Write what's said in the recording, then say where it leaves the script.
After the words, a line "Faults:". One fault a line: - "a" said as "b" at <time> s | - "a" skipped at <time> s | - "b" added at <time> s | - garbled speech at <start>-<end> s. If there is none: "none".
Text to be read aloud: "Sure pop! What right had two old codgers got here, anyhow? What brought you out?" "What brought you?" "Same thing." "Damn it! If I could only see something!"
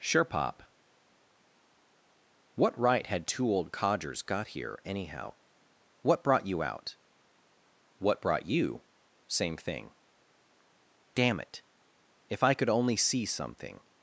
"Sure pop! What right had two old codgers got here, anyhow? What brought you out?" "What brought you?" "Same thing." "Damn it! If I could only see something!"
Faults:
none